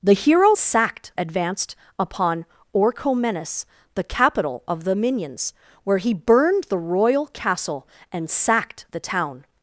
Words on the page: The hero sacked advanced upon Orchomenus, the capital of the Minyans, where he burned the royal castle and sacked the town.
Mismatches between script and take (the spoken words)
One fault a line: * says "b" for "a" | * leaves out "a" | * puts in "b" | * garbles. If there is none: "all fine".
all fine